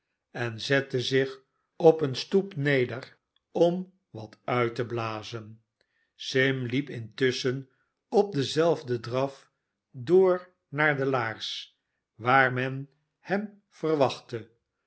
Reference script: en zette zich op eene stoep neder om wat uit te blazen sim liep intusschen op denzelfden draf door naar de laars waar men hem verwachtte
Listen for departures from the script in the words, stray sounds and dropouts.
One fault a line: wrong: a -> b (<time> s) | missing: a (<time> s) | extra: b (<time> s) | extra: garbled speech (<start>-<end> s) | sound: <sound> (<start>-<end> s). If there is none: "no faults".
no faults